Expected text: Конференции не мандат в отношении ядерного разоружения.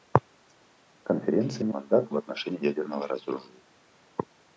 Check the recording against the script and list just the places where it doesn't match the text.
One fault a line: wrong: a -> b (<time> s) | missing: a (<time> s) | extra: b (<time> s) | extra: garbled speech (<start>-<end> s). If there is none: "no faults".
no faults